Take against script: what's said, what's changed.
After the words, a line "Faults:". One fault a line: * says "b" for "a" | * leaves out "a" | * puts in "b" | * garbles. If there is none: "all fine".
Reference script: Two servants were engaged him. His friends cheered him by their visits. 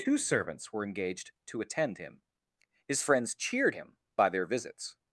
Two servants were engaged to attend him. His friends cheered him by their visits.
Faults:
* puts in "to attend"